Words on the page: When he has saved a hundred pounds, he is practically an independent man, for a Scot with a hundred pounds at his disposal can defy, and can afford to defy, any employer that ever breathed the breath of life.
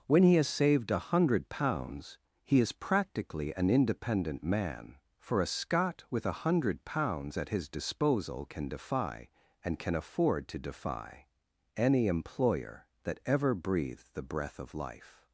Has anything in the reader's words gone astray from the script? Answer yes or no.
no